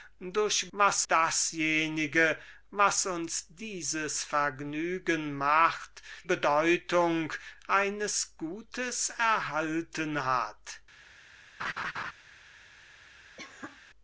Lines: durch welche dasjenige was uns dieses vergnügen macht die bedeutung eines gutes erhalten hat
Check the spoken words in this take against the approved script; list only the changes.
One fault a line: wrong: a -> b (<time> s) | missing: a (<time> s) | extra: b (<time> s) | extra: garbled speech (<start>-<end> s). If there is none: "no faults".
wrong: welche -> was (0.7 s)
missing: die (6.0 s)